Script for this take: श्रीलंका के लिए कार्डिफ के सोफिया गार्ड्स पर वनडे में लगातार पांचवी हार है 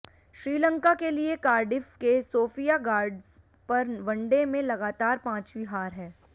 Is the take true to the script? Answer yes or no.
yes